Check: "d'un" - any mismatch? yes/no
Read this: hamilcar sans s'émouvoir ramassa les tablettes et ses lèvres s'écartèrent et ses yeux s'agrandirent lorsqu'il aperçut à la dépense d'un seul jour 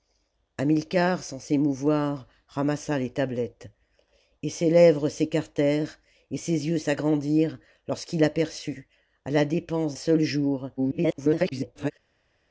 yes